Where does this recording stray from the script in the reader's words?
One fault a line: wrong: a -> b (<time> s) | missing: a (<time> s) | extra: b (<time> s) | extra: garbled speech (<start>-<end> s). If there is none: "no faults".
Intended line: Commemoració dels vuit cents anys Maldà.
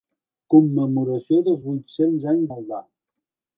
no faults